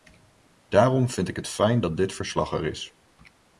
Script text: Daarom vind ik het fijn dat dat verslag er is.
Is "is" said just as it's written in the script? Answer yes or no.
yes